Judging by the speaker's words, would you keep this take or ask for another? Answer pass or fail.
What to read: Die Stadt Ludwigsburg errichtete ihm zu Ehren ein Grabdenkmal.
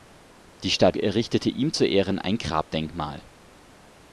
fail